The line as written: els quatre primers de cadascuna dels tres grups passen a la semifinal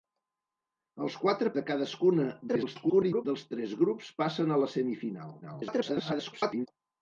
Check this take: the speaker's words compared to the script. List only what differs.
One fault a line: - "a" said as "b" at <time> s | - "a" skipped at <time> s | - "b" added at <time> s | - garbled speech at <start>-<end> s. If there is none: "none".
- "primers" skipped at 1.5 s
- garbled speech at 2.5-3.3 s
- garbled speech at 5.4-6.7 s